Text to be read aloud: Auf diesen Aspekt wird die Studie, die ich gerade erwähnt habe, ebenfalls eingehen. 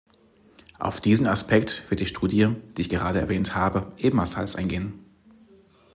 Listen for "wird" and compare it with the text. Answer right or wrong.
right